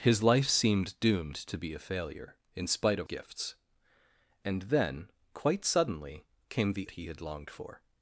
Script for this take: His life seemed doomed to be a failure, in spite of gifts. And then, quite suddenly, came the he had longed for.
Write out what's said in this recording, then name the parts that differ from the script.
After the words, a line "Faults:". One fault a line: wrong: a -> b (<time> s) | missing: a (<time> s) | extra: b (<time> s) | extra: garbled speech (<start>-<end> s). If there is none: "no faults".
His life seemed doomed to be a failure, in spite of gifts. And then, quite suddenly, came the he had longed for.
Faults:
no faults